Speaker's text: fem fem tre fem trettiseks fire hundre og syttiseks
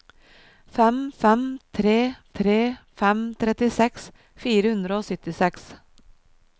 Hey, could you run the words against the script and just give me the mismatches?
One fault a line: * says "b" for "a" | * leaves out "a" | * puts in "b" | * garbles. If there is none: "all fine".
* puts in "tre"